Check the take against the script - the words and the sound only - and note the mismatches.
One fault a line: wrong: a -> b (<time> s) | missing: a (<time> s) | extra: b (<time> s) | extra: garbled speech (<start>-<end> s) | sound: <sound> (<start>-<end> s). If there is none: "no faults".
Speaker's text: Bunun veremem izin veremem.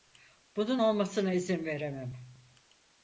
wrong: veremem -> olmasına (0.8 s)